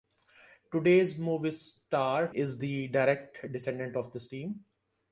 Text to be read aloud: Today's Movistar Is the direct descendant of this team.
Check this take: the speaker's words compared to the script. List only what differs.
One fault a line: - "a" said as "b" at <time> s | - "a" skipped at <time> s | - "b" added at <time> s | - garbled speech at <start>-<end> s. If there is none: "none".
none